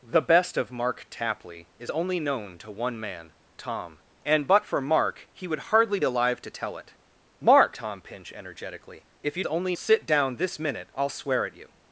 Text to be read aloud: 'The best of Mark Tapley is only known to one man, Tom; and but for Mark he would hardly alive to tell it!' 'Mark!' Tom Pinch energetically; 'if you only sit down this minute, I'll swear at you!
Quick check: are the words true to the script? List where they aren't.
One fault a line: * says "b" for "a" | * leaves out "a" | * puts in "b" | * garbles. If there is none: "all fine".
all fine